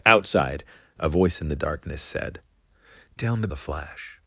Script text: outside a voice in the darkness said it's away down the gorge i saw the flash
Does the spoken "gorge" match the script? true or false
false